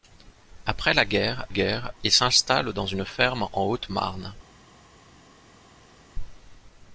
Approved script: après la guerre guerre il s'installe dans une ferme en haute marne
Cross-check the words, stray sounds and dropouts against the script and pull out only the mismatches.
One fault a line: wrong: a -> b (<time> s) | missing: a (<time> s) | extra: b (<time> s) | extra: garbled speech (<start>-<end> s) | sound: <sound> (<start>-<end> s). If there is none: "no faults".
no faults